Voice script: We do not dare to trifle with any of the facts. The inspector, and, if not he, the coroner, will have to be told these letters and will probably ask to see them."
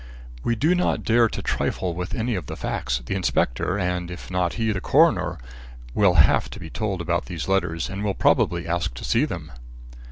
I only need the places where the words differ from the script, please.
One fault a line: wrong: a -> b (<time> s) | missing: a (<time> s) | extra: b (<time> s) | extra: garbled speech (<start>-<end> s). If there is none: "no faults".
extra: about (7.0 s)